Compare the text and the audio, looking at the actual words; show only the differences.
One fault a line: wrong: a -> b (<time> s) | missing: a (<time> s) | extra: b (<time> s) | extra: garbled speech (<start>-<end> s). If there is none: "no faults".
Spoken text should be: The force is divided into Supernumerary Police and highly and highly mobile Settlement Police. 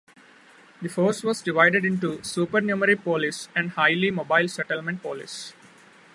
wrong: is -> was (1.2 s)
missing: and highly (4.1 s)